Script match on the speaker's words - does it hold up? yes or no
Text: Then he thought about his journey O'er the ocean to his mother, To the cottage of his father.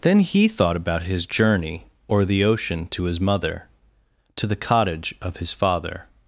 yes